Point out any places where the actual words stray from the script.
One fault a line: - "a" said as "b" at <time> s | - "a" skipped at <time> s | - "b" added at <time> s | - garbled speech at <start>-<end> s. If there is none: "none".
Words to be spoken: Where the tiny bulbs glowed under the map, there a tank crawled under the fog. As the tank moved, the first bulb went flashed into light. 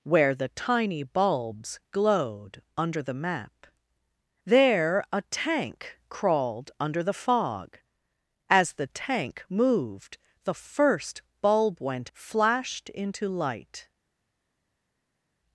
none